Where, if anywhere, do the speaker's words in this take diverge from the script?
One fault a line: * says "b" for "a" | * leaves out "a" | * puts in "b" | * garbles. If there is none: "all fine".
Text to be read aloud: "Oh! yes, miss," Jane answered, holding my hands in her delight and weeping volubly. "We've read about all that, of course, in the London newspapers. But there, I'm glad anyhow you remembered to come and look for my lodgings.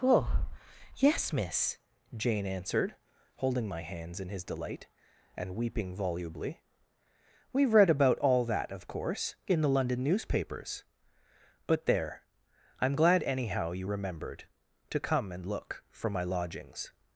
* says "his" for "her"